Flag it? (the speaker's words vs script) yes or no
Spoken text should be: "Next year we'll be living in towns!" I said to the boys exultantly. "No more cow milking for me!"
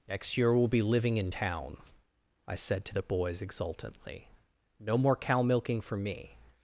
yes